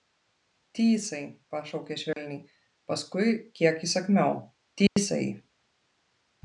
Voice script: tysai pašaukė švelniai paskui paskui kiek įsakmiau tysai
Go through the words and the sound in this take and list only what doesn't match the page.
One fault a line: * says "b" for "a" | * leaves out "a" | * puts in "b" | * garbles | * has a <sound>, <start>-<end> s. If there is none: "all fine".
* has a dropout, 2.1-2.2 s
* leaves out "paskui"
* has a dropout, 4.9-5.0 s